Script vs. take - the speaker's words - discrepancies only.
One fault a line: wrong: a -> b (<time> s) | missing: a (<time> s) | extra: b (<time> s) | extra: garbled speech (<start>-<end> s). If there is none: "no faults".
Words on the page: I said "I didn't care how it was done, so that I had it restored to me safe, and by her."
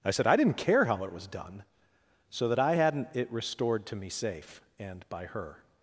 wrong: had -> hadn't (2.7 s)